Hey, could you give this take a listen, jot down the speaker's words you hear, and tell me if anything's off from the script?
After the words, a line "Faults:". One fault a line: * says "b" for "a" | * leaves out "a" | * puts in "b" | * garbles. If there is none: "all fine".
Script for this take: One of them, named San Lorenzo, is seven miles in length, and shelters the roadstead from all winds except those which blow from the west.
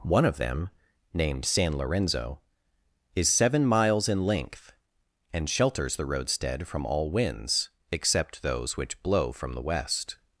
One of them, named San Lorenzo, is seven miles in length, and shelters the roadstead from all winds except those which blow from the west.
Faults:
all fine